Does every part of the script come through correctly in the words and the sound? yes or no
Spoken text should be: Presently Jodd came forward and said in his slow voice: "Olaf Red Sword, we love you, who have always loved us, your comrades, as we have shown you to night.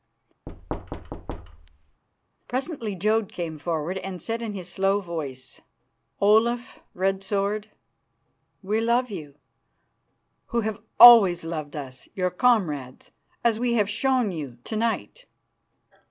no